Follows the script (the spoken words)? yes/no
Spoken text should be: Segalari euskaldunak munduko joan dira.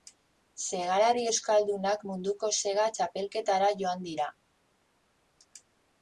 no